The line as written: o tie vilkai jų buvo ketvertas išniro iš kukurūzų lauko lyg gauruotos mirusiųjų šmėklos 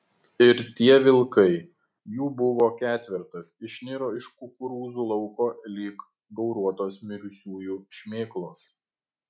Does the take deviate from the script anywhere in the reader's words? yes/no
yes